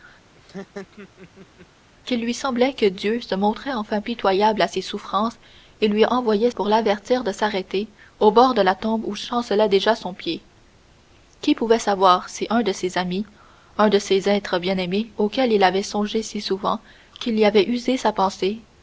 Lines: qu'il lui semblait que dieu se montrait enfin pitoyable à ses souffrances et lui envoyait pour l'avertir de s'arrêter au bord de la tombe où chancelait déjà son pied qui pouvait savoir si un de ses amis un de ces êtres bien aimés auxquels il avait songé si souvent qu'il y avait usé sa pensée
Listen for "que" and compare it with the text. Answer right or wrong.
right